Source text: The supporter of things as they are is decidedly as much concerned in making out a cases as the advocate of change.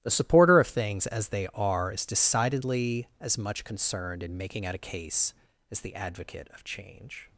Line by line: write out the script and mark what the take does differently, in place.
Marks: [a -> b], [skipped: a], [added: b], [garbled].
The supporter of things as they are is decidedly as much concerned in making out a [cases -> case] as the advocate of change.